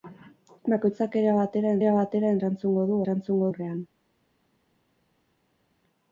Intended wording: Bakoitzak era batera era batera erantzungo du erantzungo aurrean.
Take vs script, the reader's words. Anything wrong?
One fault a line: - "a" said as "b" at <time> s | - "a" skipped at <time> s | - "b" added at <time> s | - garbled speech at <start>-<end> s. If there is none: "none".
none